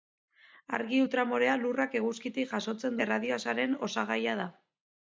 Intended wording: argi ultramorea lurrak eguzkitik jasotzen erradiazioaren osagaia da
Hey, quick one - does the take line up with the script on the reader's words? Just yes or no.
yes